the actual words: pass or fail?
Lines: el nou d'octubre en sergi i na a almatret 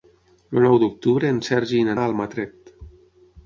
pass